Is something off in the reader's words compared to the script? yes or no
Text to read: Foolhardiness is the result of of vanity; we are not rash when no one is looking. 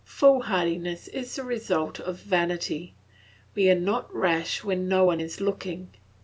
yes